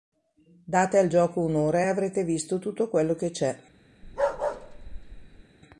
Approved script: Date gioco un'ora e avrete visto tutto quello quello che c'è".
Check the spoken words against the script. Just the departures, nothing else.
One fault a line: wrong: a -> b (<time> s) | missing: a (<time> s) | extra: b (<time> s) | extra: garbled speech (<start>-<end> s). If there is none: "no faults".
extra: al (1.0 s)
missing: quello (3.2 s)